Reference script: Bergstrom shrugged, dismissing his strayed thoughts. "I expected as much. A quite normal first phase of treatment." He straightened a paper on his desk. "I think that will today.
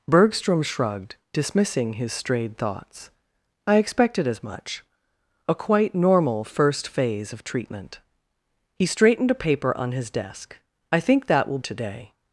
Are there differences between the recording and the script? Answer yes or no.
no